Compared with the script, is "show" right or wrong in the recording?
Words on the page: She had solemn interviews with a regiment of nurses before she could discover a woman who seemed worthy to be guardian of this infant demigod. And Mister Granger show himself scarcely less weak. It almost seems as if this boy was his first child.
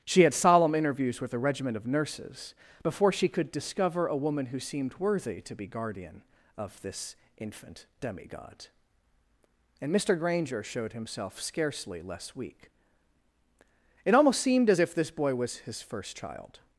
wrong